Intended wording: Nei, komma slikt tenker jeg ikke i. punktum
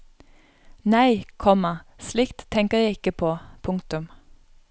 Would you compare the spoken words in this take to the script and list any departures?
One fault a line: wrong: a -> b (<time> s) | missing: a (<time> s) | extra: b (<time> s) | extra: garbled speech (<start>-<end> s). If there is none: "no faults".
wrong: i -> på (3.1 s)